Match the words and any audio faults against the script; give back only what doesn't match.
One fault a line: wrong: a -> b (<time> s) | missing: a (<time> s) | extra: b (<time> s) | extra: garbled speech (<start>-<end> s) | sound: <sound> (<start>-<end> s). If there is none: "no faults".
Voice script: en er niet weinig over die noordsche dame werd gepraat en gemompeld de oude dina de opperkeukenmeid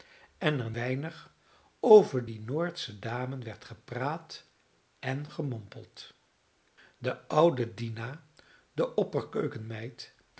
missing: niet (0.7 s)